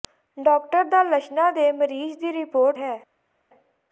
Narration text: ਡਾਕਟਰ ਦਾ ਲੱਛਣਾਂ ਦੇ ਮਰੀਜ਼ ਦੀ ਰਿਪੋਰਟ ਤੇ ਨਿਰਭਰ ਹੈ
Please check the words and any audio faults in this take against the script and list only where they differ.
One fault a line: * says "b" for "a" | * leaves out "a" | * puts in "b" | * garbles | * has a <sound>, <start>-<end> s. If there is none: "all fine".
* leaves out "ਤੇ ਨਿਰਭਰ"